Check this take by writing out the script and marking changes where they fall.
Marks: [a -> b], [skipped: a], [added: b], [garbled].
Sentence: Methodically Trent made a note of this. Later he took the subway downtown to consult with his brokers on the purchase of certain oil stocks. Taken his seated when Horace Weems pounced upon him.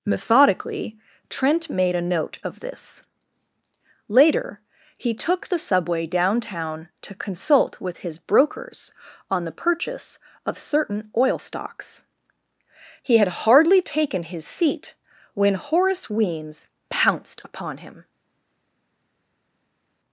Methodically Trent made a note of this. Later he took the subway downtown to consult with his brokers on the purchase of certain oil stocks. [added: He had hardly] Taken his [seated -> seat] when Horace Weems pounced upon him.